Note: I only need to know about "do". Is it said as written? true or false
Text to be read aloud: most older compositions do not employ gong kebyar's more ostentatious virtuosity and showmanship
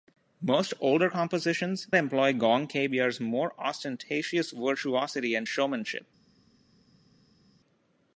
false